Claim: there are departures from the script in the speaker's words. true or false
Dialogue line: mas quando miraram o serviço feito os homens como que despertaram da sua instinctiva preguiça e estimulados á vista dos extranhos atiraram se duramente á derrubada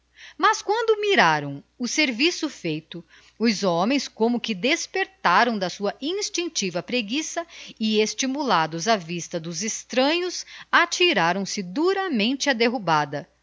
false